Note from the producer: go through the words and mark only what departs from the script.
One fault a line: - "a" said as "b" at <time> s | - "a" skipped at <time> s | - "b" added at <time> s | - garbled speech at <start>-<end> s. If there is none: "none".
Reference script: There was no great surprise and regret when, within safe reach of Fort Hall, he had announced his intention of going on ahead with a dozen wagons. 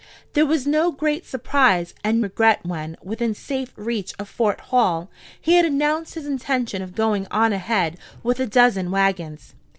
none